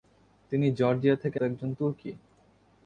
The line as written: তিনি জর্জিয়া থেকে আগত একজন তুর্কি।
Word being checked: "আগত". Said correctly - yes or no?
no